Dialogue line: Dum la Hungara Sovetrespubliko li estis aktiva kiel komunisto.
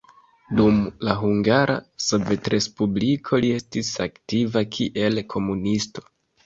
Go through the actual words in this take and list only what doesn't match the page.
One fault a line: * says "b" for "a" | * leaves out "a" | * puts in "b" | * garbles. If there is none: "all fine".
all fine